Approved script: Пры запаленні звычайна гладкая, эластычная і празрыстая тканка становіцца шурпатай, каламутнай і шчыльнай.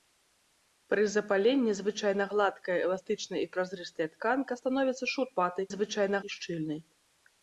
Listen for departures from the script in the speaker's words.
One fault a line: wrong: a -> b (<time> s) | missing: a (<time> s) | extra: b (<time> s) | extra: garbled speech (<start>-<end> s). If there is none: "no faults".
wrong: каламутнай -> звычайна (5.7 s)